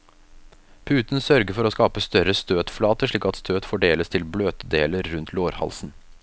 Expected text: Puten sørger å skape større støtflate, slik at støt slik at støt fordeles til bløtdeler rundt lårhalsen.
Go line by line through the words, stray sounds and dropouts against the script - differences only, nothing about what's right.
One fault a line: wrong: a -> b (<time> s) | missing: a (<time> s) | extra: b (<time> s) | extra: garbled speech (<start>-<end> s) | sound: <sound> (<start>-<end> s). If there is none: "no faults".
extra: for (1.6 s)
missing: slik at støt (3.7 s)